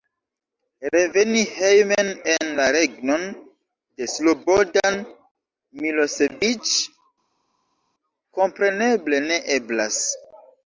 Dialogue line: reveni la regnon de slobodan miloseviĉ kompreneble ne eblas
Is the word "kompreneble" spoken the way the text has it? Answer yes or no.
yes